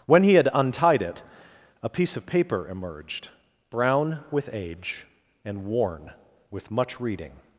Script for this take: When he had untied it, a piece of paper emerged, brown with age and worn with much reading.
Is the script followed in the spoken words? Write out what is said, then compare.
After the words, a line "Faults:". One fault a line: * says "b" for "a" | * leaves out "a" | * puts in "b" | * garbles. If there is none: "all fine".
When he had untied it, a piece of paper emerged, brown with age and worn with much reading.
Faults:
all fine